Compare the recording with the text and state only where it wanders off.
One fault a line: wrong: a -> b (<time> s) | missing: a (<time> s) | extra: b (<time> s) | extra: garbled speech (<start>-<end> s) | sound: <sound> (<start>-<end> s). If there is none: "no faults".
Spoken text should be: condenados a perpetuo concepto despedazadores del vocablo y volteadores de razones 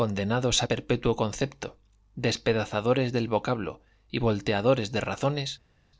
no faults